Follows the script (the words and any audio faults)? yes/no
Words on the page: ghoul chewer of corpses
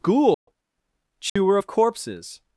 no